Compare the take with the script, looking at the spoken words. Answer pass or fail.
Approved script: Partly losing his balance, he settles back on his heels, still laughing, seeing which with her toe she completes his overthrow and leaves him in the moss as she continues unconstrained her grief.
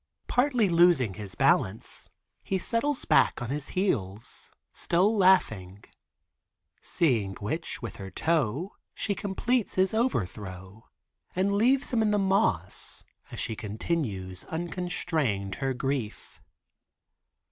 pass